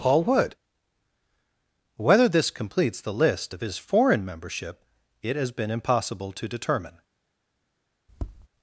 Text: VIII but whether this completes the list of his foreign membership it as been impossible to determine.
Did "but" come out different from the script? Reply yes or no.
yes